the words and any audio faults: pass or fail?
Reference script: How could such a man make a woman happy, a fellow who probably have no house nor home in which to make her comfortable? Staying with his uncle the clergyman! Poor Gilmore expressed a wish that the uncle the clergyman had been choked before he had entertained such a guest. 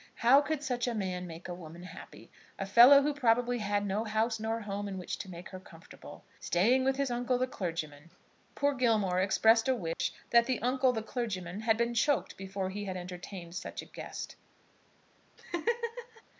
fail